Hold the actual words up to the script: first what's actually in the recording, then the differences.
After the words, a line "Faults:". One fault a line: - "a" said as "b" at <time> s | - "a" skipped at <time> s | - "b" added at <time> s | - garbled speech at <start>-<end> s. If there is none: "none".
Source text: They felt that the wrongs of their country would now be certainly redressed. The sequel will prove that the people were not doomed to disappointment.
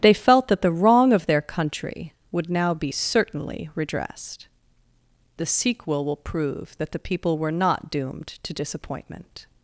They felt that the wrong of their country would now be certainly redressed. The sequel will prove that the people were not doomed to disappointment.
Faults:
- "wrongs" said as "wrong" at 0.7 s